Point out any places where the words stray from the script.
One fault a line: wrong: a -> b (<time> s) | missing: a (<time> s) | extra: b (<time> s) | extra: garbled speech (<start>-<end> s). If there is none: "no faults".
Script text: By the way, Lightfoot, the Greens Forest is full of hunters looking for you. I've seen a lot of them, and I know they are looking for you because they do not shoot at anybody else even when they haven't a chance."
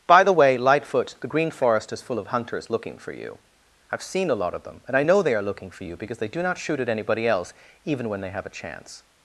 wrong: Greens -> Green (1.3 s)
wrong: haven't -> have (8.3 s)